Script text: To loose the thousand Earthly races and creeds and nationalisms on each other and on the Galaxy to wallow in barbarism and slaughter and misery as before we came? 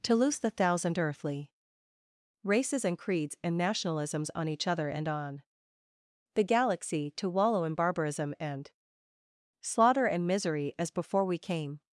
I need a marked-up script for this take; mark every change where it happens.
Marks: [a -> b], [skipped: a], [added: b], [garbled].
To loose the thousand Earthly races and creeds and nationalisms on each other and on the Galaxy to wallow in barbarism and slaughter and misery as before we came?